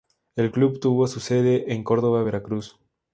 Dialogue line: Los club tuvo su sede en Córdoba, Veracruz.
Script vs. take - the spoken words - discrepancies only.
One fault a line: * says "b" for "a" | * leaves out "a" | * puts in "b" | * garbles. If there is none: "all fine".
* says "El" for "Los"